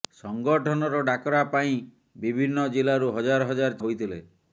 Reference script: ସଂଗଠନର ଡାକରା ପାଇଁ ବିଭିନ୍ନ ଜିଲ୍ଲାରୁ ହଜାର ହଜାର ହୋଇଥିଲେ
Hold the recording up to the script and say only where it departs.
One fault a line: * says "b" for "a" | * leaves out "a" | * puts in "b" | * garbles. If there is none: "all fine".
all fine